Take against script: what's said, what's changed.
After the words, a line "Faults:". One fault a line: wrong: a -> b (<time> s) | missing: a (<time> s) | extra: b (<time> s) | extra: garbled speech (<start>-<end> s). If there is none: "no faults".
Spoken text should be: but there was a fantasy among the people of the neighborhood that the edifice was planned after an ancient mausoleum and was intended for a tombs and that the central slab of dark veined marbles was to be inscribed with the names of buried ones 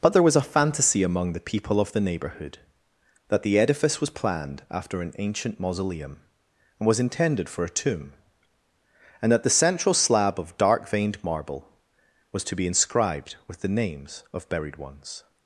but there was a fantasy among the people of the neighborhood that the edifice was planned after an ancient mausoleum and was intended for a tomb and that the central slab of dark veined marble was to be inscribed with the names of buried ones
Faults:
wrong: tombs -> tomb (7.7 s)
wrong: marbles -> marble (11.2 s)